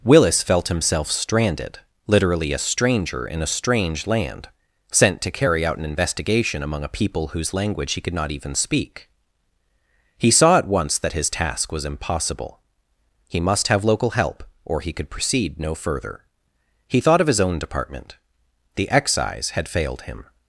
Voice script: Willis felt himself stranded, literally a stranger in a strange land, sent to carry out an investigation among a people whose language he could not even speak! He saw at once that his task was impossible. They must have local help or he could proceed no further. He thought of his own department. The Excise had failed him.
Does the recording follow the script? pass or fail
fail